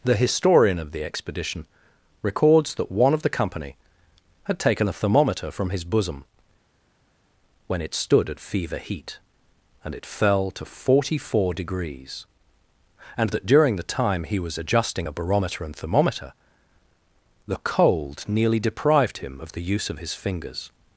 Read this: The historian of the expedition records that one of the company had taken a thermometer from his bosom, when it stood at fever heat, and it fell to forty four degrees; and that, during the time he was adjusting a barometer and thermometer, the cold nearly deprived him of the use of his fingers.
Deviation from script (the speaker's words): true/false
false